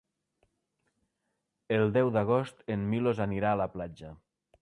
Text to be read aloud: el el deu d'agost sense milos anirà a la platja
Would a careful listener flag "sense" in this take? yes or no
yes